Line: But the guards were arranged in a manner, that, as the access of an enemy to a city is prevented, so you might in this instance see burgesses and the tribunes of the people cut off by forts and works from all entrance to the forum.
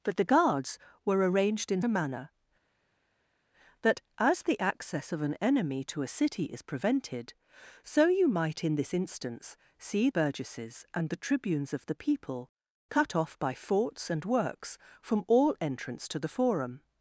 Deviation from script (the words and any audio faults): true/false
false